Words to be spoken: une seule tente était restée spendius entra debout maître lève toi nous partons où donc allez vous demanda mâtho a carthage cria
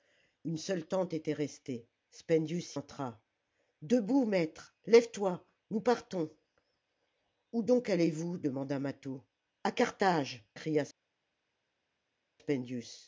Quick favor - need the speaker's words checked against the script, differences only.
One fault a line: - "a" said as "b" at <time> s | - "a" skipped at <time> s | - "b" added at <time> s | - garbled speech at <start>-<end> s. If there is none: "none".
none